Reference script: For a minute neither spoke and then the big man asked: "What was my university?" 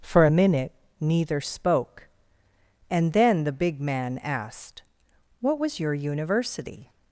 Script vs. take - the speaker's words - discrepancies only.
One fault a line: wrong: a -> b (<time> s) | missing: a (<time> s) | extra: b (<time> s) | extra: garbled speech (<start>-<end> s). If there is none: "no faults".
wrong: my -> your (5.8 s)